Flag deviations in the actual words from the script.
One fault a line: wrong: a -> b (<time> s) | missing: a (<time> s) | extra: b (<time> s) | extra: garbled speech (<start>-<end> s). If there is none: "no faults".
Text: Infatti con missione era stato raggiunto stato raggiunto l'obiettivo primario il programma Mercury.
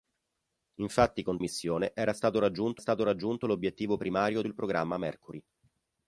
no faults